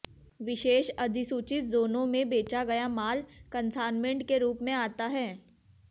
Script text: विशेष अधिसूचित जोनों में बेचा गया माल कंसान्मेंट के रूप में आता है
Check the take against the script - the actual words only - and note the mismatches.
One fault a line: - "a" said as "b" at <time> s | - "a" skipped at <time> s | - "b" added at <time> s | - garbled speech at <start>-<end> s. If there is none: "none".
none